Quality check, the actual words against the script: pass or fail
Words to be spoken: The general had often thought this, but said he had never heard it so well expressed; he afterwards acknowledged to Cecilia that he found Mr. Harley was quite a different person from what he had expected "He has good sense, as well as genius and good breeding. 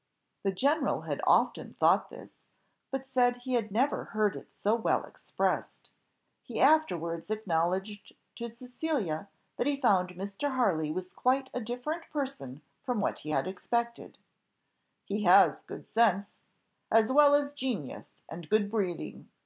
pass